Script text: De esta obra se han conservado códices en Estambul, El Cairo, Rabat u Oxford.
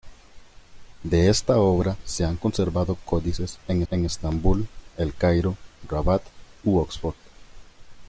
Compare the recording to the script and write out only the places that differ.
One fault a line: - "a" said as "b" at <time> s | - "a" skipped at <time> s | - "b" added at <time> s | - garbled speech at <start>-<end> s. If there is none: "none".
- "en" added at 3.9 s